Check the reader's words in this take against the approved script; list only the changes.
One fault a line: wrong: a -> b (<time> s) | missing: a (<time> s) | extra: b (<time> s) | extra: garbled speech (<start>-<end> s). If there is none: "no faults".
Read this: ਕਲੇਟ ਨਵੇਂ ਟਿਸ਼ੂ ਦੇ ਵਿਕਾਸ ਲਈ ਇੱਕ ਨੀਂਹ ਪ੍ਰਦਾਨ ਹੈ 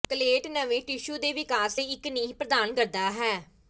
extra: ਕਰਦਾ (2.7 s)